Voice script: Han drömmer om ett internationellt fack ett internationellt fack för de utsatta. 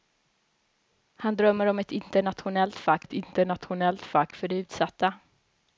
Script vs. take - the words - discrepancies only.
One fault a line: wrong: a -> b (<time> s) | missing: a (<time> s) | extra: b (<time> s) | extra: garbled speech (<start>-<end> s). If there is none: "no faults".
no faults